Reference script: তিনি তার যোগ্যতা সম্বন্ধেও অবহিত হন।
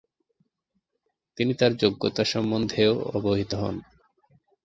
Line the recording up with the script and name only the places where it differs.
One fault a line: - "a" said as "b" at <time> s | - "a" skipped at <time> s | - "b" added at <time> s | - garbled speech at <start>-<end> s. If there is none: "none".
none